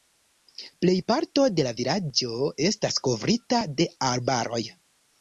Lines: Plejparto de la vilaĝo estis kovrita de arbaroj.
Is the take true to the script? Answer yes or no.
no